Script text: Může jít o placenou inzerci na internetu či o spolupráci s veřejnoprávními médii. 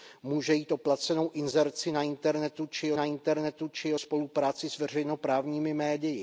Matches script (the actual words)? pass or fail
fail